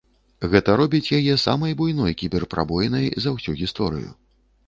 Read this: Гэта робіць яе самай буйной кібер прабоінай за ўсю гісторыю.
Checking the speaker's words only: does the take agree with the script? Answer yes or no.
yes